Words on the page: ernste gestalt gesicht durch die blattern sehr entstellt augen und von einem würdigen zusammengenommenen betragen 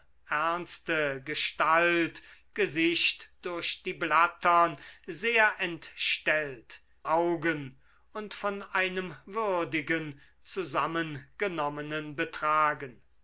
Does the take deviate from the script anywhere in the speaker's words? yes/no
no